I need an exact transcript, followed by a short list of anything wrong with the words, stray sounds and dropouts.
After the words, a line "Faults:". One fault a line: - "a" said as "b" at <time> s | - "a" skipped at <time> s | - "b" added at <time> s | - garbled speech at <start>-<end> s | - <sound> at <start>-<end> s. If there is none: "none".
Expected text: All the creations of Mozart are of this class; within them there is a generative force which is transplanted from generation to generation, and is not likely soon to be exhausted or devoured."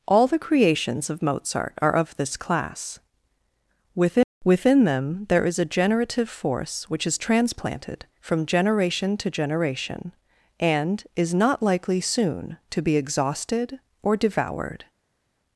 All the creations of Mozart are of this class; within within them there is a generative force which is transplanted from generation to generation, and is not likely soon to be exhausted or devoured."
Faults:
- "within" added at 4.4 s